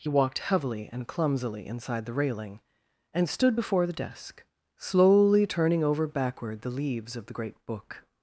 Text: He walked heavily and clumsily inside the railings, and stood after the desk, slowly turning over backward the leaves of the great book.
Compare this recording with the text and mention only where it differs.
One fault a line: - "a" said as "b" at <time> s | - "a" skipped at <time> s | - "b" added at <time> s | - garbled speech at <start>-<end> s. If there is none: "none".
- "railings" said as "railing" at 2.1 s
- "after" said as "before" at 3.5 s